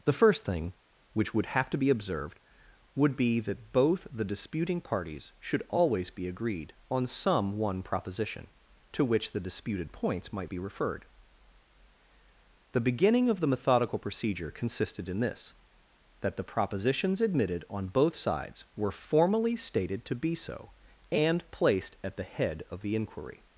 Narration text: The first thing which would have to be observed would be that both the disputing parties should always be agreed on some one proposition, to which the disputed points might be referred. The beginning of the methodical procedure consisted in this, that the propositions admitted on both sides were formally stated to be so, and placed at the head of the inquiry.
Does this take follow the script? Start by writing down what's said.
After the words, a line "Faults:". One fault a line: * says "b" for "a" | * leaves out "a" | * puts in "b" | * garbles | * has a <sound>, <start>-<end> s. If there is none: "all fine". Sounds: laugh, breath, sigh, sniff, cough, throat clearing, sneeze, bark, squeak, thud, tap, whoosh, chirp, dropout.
The first thing which would have to be observed would be that both the disputing parties should always be agreed on some one proposition, to which the disputed points might be referred. The beginning of the methodical procedure consisted in this, that the propositions admitted on both sides were formally stated to be so, and placed at the head of the inquiry.
Faults:
all fine